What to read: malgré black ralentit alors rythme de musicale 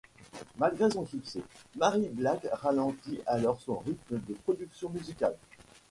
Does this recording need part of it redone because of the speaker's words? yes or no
yes